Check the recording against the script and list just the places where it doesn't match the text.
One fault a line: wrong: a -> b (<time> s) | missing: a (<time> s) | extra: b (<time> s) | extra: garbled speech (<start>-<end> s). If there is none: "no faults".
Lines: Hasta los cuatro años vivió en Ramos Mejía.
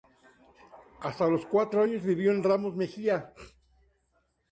no faults